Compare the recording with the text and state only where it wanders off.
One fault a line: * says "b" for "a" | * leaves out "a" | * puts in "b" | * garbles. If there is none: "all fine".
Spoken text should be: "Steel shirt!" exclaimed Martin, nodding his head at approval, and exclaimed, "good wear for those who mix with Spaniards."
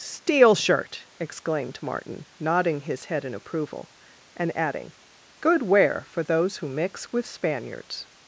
* says "in" for "at"
* says "adding" for "exclaimed"